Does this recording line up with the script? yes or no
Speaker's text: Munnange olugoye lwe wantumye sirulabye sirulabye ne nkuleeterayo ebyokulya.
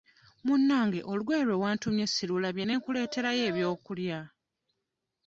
no